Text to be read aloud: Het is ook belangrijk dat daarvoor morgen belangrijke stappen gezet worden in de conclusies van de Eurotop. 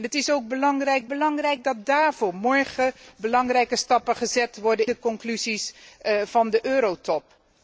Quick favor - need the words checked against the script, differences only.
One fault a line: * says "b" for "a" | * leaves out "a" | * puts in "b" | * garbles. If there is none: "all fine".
* puts in "belangrijk"
* leaves out "in"